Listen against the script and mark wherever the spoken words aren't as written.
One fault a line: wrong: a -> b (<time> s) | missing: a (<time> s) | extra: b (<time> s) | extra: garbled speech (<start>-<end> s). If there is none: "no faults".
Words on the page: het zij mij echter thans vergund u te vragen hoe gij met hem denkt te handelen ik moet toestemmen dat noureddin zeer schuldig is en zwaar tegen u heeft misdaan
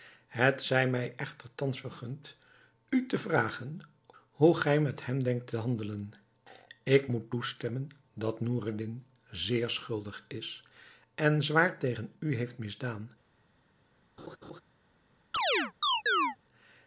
no faults